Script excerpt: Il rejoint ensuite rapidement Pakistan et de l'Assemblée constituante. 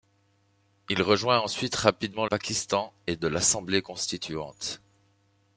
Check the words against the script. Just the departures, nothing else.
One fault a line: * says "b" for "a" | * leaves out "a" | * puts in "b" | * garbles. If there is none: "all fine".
all fine